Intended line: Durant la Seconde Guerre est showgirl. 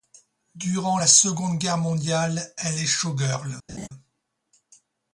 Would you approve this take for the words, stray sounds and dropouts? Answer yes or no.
no